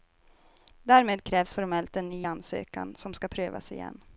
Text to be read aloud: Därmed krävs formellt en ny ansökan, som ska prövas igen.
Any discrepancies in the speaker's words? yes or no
no